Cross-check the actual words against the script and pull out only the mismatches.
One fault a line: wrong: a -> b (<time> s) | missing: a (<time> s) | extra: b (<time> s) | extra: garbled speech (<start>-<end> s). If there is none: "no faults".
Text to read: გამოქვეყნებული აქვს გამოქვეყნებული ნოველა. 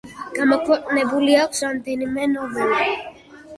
wrong: გამოქვეყნებული -> რამდენიმე (1.7 s)